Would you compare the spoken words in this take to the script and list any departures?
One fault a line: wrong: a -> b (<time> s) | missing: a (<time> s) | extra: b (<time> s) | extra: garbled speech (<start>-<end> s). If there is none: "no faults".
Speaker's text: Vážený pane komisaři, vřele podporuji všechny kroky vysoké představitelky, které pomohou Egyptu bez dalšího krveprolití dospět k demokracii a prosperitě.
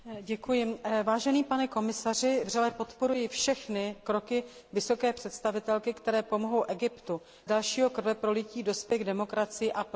missing: bez (7.2 s)